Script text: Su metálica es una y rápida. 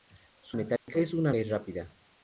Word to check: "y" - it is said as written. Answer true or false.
true